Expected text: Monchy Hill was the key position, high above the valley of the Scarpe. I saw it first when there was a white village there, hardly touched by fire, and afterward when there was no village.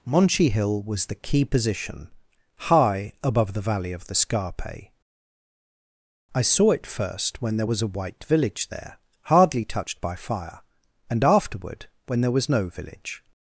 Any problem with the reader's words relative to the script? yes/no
no